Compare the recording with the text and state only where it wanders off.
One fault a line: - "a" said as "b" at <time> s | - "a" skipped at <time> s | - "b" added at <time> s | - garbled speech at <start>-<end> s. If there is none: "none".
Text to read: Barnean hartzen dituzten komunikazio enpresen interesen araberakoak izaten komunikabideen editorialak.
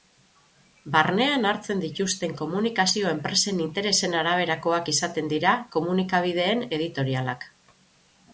- "dira" added at 5.3 s